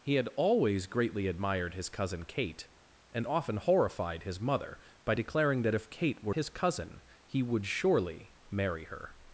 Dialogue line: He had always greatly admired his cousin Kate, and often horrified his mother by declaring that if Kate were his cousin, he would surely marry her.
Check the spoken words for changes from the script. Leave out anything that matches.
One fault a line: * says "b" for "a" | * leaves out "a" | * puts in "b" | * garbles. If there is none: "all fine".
all fine